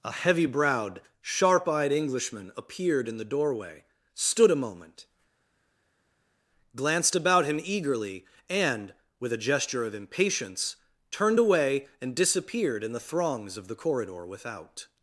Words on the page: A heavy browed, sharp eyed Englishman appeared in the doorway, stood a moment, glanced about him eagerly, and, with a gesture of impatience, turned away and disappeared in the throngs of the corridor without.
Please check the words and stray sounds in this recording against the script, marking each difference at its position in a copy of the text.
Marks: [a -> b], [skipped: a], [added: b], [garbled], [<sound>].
A heavy browed, sharp eyed Englishman appeared in the doorway, stood a moment, glanced about him eagerly, and, with a gesture of impatience, turned away and disappeared in the throngs of the corridor without.